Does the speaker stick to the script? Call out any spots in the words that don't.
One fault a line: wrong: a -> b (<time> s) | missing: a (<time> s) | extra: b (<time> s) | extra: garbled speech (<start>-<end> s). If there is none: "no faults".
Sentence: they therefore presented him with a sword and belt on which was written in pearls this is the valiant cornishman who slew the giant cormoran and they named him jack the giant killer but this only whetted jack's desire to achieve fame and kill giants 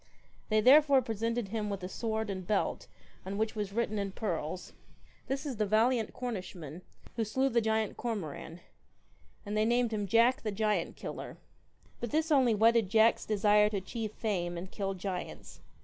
no faults